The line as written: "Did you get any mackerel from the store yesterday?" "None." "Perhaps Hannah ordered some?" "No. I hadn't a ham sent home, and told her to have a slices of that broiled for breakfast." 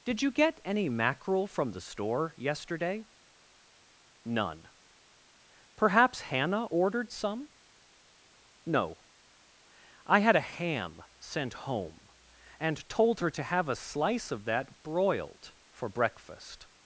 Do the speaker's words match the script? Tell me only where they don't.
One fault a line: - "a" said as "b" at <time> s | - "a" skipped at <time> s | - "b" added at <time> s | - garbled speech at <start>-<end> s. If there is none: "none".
- "hadn't" said as "had" at 10.2 s
- "slices" said as "slice" at 13.8 s